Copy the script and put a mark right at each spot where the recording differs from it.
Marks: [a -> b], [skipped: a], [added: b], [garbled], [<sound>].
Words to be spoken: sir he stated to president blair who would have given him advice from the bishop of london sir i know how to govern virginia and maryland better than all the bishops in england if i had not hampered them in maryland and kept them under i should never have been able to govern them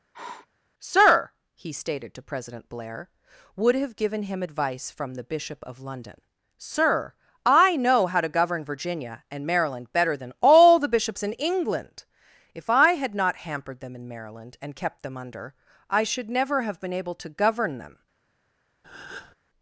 [sniff] sir he stated to president blair [skipped: who] would have given him advice from the bishop of london sir i know how to govern virginia and maryland better than all the bishops in england if i had not hampered them in maryland and kept them under i should never have been able to govern them [breath]